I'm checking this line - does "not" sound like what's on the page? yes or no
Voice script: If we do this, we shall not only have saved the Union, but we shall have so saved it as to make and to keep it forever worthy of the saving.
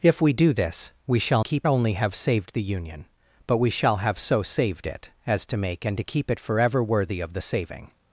no